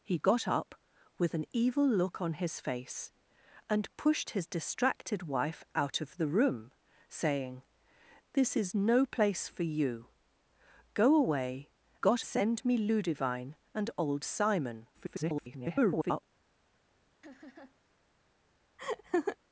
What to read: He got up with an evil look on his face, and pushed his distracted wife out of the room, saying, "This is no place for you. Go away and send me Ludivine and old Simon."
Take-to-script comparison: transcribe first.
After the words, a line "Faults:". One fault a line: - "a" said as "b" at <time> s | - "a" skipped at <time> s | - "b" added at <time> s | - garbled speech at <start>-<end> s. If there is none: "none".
He got up with an evil look on his face, and pushed his distracted wife out of the room, saying, "This is no place for you. Go away got send me Ludivine and old Simon." [garbled]
Faults:
- "and" said as "got" at 12.0 s
- garbled speech at 14.9-16.2 s